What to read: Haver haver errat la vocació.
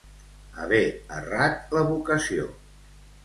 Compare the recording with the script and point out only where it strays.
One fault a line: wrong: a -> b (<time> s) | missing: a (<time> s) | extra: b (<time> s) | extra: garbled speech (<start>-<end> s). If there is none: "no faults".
missing: haver (0.8 s)